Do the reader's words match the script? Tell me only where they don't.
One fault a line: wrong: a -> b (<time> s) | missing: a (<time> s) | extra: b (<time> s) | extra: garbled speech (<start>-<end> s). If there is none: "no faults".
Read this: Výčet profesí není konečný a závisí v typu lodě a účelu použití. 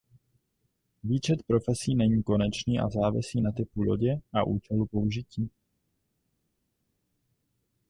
wrong: v -> na (3.4 s)